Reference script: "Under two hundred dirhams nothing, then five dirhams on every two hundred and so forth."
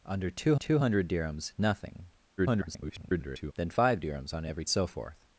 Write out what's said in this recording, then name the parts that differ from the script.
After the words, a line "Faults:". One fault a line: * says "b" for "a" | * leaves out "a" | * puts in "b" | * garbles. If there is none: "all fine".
"Under two two hundred dirhams nothing, [garbled] then five dirhams on every so forth."
Faults:
* puts in "two"
* garbles
* leaves out "two hundred and"